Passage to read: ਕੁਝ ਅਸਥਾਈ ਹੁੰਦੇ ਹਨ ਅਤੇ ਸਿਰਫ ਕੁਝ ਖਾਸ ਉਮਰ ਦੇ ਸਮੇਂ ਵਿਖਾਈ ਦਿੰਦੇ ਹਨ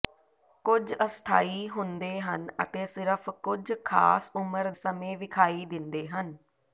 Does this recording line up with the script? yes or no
no